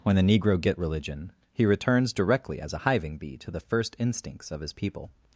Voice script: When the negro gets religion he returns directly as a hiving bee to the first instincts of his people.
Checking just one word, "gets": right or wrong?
wrong